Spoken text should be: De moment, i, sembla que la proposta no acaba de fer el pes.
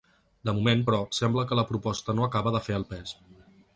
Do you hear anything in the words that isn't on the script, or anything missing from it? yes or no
yes